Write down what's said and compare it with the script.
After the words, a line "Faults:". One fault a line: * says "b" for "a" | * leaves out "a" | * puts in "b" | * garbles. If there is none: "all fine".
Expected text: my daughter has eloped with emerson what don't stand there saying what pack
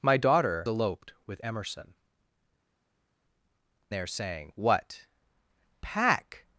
my daughter eloped with emerson there saying what pack
Faults:
* leaves out "has"
* leaves out "what don't stand"